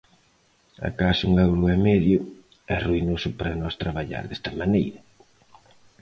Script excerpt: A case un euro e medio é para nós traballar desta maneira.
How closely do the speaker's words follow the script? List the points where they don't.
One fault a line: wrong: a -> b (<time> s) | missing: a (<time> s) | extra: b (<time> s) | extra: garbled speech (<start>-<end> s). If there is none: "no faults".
extra: ruinoso (2.9 s)